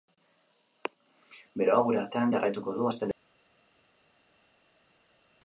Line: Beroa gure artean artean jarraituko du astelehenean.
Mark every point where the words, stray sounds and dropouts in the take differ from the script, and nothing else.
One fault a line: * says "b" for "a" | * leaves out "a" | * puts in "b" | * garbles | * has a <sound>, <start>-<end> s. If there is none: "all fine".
* leaves out "artean"